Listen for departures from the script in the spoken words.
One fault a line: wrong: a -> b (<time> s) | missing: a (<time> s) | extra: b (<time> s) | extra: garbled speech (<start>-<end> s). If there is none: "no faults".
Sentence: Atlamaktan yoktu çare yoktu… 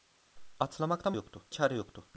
no faults